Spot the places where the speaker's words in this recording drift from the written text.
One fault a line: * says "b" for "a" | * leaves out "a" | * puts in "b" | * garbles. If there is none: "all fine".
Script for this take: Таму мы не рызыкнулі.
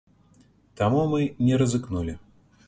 all fine